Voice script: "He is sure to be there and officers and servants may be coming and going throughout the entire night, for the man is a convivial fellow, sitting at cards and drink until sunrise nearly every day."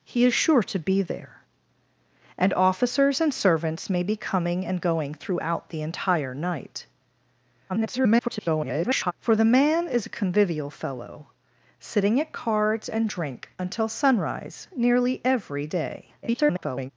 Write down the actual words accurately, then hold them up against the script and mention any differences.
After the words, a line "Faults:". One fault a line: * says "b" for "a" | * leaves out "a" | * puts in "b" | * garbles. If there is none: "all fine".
"He is sure to be there and officers and servants may be coming and going throughout the entire night, [garbled] for the man is a convivial fellow, sitting at cards and drink until sunrise nearly every day." [garbled]
Faults:
* garbles
* garbles